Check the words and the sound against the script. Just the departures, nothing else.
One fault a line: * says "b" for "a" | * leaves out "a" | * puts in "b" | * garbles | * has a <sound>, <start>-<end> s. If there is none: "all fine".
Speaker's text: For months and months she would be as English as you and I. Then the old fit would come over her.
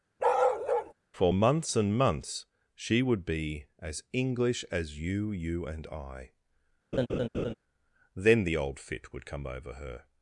* has a bark, 0.2-0.9 s
* puts in "you"
* has a laugh, 6.9-7.5 s